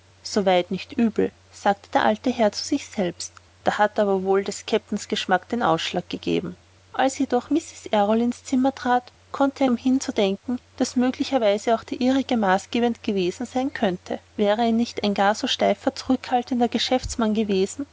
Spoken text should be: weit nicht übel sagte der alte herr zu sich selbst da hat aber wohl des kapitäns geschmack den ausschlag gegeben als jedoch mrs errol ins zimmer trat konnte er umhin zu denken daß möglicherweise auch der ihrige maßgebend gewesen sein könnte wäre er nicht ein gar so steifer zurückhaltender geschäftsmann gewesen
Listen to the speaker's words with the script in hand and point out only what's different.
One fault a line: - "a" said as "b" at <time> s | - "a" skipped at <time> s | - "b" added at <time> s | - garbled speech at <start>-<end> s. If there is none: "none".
none